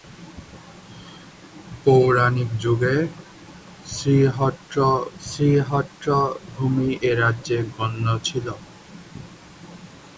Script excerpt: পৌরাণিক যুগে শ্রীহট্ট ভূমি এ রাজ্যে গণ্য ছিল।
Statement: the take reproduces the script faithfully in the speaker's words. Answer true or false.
false